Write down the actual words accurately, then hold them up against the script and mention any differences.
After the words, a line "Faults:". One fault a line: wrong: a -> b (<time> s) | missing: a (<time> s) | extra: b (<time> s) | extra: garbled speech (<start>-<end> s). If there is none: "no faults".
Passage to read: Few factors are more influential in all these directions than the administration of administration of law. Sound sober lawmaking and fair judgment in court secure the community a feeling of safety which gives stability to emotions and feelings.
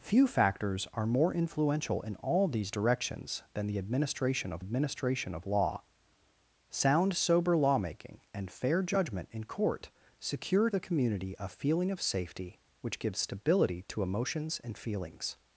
Few factors are more influential in all these directions than the administration of administration of law. Sound sober lawmaking and fair judgment in court secure the community a feeling of safety which gives stability to emotions and feelings.
Faults:
no faults